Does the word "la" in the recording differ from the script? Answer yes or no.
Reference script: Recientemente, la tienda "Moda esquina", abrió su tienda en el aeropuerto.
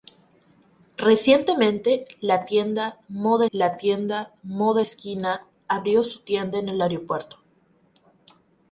no